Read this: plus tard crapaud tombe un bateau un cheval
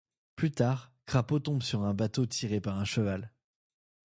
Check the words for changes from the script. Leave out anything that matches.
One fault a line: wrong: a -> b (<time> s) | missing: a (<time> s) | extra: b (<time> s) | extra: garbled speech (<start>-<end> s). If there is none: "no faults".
extra: sur (1.6 s)
extra: tiré par (2.2 s)